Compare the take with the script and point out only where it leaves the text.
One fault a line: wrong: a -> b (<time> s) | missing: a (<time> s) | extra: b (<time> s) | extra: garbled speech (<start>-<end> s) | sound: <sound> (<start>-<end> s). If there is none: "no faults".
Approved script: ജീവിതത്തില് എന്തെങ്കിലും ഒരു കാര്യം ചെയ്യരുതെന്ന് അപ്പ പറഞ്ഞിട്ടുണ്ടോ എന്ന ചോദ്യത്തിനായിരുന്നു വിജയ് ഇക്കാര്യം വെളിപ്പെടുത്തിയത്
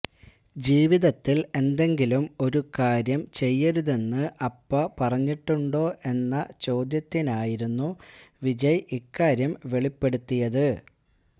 no faults